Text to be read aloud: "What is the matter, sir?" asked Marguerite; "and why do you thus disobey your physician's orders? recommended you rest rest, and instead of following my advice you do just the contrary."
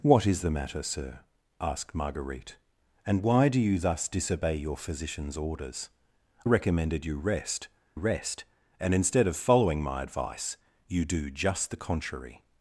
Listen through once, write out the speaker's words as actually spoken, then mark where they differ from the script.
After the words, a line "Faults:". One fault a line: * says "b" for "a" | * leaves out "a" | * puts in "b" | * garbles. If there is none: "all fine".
"What is the matter, sir?" asked Marguerite; "and why do you thus disobey your physician's orders? recommended you rest rest, and instead of following my advice you do just the contrary."
Faults:
all fine